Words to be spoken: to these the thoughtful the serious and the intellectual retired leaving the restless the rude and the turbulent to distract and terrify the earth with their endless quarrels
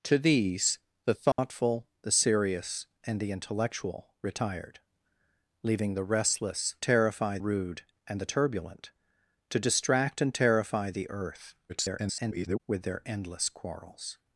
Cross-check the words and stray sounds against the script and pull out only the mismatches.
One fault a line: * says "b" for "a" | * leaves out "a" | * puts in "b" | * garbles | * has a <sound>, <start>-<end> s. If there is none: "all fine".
* has a dropout, 1.3-1.4 s
* says "terrify" for "the"
* garbles